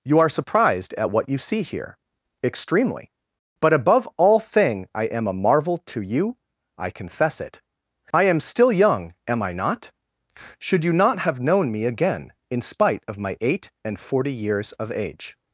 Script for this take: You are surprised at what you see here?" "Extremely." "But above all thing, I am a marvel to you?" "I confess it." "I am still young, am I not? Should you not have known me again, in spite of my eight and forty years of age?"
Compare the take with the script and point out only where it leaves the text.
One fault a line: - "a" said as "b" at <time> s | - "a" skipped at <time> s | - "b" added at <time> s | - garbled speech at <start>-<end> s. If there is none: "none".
none